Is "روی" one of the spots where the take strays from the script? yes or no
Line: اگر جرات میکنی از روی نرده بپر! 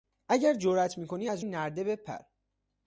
yes